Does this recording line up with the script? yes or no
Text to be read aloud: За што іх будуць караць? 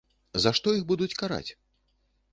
yes